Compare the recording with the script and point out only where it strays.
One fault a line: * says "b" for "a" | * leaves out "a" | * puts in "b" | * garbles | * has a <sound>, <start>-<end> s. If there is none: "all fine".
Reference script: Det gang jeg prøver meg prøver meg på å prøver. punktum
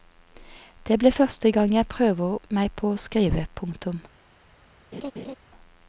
* puts in "blir første"
* leaves out "prøver meg"
* says "skrive" for "prøver"
* has a laugh, 4.9-5.4 s